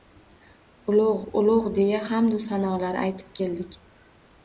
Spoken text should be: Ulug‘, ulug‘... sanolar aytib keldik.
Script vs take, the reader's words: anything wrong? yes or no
yes